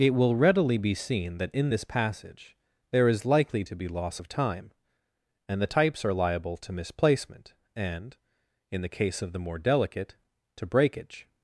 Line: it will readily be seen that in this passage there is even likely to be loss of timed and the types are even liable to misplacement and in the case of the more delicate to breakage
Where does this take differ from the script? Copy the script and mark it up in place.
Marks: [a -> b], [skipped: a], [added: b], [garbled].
it will readily be seen that in this passage there is [skipped: even] likely to be loss of [timed -> time] and the types are [skipped: even] liable to misplacement and in the case of the more delicate to breakage